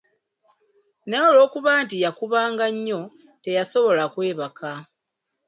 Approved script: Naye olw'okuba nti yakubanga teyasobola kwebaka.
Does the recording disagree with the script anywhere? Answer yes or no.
yes